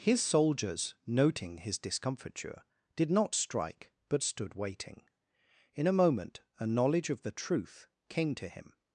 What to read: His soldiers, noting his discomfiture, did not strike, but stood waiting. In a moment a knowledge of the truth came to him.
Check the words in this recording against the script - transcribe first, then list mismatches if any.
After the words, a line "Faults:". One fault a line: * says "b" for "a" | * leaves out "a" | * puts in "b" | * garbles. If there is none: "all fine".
His soldiers, noting his discomfiture, did not strike, but stood waiting. In a moment a knowledge of the truth came to him.
Faults:
all fine